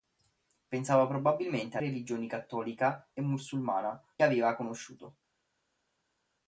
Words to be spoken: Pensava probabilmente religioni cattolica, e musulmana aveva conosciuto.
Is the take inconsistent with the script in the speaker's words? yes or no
no